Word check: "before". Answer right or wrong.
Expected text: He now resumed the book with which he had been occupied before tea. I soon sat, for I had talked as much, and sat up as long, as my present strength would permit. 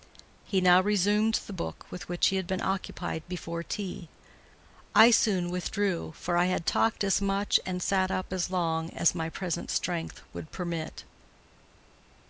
right